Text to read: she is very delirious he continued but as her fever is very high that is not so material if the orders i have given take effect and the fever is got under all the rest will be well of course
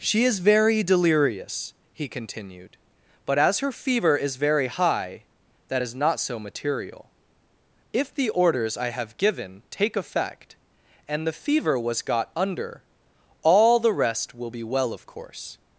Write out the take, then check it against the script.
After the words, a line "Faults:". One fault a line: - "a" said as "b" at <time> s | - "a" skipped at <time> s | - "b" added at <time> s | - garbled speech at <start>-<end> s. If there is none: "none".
she is very delirious he continued but as her fever is very high that is not so material if the orders i have given take effect and the fever was got under all the rest will be well of course
Faults:
- "is" said as "was" at 11.8 s